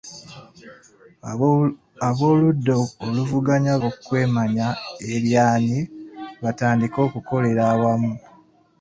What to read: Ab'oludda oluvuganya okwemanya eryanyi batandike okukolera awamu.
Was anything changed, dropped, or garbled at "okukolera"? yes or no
no